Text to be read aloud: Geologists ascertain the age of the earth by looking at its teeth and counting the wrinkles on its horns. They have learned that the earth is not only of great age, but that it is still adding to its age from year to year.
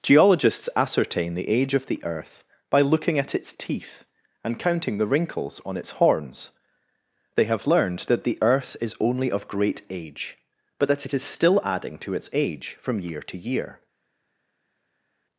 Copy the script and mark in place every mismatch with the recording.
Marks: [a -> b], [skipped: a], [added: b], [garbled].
Geologists ascertain the age of the earth by looking at its teeth and counting the wrinkles on its horns. They have learned that the earth is [skipped: not] only of great age, but that it is still adding to its age from year to year.